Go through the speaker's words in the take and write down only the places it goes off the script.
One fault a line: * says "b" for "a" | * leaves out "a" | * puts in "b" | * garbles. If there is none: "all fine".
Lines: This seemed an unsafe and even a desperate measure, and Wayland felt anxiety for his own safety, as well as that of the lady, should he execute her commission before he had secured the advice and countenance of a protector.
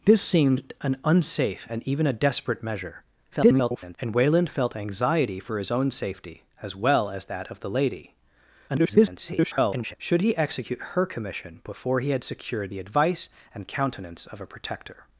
* garbles
* garbles